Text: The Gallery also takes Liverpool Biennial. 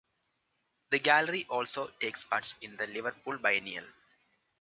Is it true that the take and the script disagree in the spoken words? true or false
true